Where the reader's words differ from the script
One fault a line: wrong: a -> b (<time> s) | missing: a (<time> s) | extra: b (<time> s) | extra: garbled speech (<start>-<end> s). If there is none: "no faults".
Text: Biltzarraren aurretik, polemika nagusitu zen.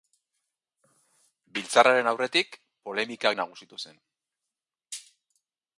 no faults